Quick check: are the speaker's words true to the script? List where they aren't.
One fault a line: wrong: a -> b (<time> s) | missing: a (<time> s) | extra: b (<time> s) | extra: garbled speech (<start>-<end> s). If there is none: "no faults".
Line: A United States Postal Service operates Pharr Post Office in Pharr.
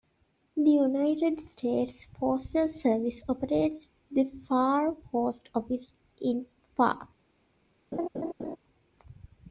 wrong: A -> The (0.6 s)
extra: the (4.1 s)